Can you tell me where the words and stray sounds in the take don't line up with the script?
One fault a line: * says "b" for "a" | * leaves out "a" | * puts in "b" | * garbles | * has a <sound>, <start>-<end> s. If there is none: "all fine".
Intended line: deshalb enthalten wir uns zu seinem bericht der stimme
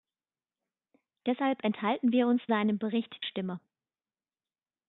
* leaves out "zu"
* leaves out "der"